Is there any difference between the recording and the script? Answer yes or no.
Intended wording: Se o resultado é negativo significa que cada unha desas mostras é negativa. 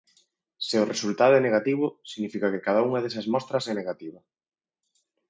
no